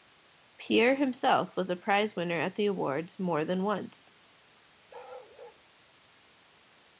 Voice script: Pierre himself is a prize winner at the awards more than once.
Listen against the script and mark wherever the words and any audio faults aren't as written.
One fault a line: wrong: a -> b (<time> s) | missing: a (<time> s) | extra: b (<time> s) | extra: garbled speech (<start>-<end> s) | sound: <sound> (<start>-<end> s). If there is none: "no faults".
wrong: is -> was (1.6 s)
sound: bark (4.9-5.6 s)